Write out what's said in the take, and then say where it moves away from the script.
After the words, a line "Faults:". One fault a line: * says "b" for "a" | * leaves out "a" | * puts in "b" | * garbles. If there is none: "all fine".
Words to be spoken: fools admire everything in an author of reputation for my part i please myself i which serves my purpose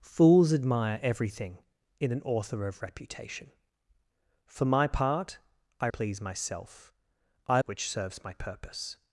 fools admire everything in an author of reputation for my part i please myself i which serves my purpose
Faults:
all fine